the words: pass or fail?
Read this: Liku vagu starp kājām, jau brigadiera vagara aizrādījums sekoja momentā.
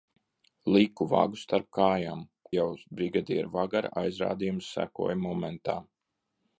pass